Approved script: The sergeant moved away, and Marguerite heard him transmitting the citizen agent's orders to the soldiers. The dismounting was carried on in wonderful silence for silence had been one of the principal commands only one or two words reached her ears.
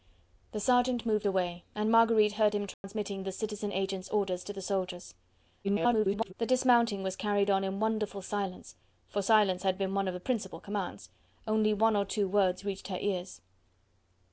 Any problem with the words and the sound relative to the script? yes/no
yes